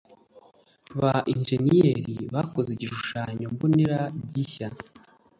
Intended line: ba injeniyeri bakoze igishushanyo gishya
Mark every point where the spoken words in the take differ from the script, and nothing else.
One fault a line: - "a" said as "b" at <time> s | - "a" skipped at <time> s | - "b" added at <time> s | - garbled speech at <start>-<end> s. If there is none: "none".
- "mbonera" added at 3.5 s